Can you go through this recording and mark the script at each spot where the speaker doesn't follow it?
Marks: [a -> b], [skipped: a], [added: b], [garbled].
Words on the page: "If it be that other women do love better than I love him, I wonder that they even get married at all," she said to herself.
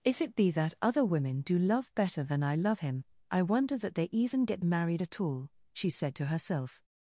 "If it be that other women do love better than I love him, I wonder that they even get married at all," she said to herself.